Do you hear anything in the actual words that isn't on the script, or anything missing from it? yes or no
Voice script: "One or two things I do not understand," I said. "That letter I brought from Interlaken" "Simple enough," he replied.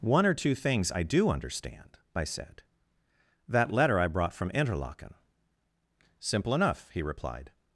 yes